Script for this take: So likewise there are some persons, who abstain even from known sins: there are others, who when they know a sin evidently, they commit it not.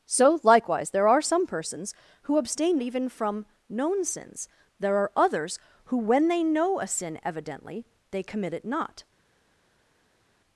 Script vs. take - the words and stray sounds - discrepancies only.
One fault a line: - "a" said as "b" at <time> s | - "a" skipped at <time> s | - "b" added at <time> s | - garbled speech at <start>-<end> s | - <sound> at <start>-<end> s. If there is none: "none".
none